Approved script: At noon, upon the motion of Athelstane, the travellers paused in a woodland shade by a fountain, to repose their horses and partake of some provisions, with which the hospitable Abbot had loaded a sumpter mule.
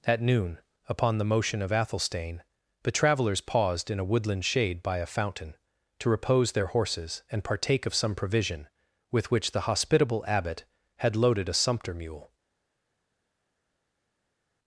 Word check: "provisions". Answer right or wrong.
wrong